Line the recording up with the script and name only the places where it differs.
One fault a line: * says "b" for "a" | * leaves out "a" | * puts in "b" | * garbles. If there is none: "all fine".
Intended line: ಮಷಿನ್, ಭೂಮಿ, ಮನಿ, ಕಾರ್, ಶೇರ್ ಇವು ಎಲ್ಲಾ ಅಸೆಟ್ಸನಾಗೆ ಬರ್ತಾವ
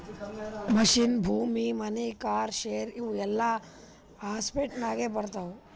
all fine